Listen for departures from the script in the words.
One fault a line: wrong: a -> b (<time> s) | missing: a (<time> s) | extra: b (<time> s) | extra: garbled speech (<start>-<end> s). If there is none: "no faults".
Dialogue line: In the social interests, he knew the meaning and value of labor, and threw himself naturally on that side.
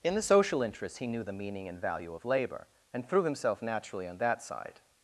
no faults